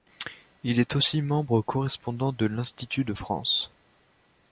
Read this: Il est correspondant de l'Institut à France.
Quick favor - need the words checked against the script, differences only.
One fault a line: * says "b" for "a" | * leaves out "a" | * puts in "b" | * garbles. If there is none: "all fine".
* puts in "aussi membre"
* says "de" for "à"